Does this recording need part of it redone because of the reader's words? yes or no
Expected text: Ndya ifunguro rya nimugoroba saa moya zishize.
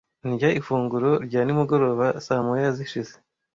no